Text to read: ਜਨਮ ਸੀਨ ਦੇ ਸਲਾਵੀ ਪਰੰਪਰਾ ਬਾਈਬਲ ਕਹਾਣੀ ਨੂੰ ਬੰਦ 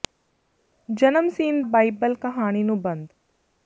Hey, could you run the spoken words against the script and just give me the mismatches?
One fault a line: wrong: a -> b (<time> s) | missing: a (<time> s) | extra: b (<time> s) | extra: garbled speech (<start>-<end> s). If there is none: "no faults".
missing: ਦੇ ਸਲਾਵੀ ਪਰੰਪਰਾ (1.6 s)